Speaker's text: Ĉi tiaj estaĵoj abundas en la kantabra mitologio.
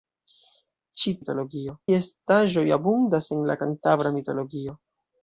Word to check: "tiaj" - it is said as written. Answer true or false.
false